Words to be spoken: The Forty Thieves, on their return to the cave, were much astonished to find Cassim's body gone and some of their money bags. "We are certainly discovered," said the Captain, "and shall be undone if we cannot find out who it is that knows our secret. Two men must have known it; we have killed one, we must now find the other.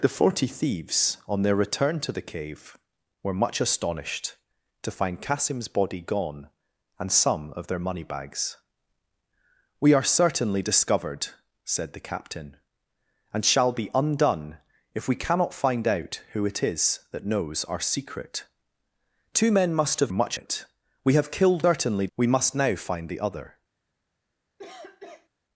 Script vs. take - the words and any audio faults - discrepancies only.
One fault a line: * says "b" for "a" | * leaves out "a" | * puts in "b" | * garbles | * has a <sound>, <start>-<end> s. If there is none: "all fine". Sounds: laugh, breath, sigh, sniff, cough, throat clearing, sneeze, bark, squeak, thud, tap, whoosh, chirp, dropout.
* says "much" for "known"
* says "certainly" for "one"
* has a cough, 24.6-25.3 s